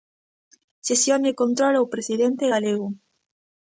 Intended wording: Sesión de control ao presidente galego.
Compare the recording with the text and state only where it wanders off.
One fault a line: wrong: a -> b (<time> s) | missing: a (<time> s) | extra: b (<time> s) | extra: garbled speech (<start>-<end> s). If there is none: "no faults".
no faults